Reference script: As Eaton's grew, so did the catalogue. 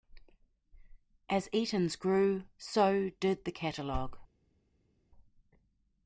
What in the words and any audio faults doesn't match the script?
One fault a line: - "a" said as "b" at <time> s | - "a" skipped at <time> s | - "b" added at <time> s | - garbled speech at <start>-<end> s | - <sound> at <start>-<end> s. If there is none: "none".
none